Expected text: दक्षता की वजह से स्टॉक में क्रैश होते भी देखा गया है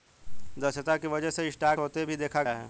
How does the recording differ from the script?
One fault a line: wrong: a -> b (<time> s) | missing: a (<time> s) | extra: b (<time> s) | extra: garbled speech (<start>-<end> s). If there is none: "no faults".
missing: में क्रैश (1.8 s)
missing: गया (2.4 s)